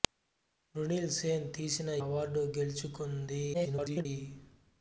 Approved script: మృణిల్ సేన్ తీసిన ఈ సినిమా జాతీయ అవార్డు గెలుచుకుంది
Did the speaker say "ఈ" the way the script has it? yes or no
no